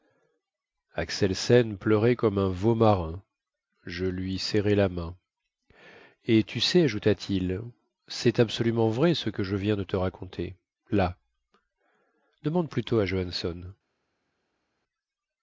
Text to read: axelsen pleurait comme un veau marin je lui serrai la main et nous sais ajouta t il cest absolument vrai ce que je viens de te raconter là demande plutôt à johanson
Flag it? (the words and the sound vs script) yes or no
yes